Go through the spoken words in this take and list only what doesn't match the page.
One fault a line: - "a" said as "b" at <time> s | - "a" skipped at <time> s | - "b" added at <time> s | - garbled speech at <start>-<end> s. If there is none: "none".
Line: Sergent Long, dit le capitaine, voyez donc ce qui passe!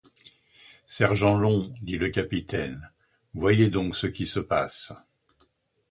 - "se" added at 4.3 s